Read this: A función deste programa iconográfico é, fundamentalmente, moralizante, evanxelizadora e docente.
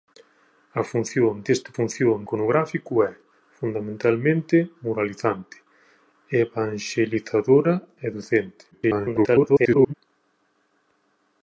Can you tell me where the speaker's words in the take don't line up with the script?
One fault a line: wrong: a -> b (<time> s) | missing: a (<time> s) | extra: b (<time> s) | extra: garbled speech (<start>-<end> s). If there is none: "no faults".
wrong: programa -> función (1.8 s)
extra: garbled speech (8.7-9.9 s)